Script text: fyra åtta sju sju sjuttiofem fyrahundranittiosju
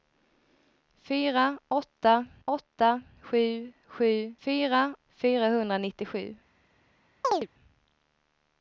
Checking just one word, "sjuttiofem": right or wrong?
wrong